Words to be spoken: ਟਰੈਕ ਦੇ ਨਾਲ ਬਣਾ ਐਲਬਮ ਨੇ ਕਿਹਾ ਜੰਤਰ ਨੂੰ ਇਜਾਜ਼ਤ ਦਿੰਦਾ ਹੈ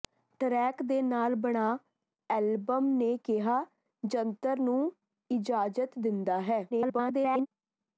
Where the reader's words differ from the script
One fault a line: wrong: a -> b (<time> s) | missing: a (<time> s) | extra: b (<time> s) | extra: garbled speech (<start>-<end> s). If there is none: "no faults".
extra: garbled speech (6.7-7.5 s)